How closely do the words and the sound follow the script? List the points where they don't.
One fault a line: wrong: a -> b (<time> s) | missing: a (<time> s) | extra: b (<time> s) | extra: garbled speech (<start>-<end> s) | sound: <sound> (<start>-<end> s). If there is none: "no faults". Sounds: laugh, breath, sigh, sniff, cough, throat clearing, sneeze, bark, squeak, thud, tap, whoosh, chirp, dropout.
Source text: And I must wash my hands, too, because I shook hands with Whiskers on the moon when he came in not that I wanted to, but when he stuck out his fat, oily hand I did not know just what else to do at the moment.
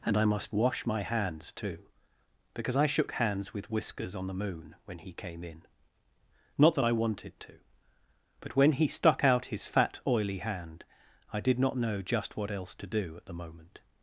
no faults